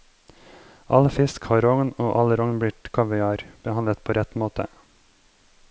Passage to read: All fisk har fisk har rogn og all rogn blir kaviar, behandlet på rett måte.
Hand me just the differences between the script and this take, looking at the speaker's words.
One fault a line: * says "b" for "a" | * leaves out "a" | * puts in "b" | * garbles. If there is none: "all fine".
* leaves out "fisk har"